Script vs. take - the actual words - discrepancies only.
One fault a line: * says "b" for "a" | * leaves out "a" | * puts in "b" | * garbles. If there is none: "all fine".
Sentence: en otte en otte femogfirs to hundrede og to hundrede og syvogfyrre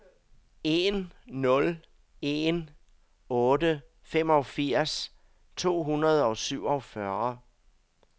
* says "nul" for "otte"
* leaves out "to hundrede og"